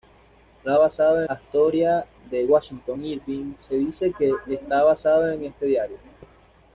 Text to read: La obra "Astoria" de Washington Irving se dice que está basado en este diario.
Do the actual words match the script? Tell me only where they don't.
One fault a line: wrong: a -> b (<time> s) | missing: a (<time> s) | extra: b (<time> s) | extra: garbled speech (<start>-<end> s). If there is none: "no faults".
wrong: obra -> basado (0.8 s)